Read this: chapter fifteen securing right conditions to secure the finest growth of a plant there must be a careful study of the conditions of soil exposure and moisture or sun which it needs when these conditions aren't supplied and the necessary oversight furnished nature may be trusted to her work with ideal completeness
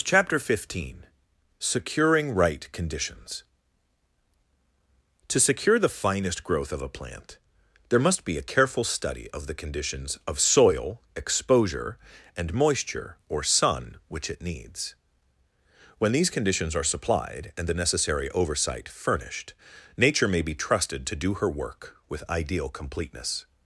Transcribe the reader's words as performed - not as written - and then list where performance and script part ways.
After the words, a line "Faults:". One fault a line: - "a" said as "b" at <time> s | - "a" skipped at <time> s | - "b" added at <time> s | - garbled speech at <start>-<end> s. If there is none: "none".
chapter fifteen securing right conditions to secure the finest growth of a plant there must be a careful study of the conditions of soil exposure and moisture or sun which it needs when these conditions are supplied and the necessary oversight furnished nature may be trusted to do her work with ideal completeness
Faults:
- "aren't" said as "are" at 16.8 s
- "do" added at 21.1 s